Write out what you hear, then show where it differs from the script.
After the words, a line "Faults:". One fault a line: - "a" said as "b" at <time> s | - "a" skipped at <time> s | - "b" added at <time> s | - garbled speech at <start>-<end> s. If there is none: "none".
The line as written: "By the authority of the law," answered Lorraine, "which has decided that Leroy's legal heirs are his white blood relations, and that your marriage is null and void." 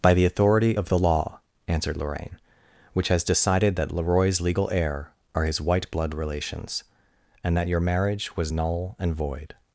"By the authority of the law," answered Lorraine, "which has decided that Leroy's legal heir are his white blood relations, and that your marriage was null and void."
Faults:
- "heirs" said as "heir" at 4.7 s
- "is" said as "was" at 8.4 s